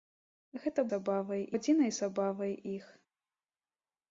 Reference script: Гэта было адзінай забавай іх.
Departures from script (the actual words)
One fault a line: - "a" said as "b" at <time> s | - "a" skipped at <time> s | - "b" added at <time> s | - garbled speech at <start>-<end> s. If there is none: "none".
- "было" said as "забавай" at 0.9 s